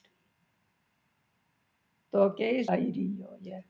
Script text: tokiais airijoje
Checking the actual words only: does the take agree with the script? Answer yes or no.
yes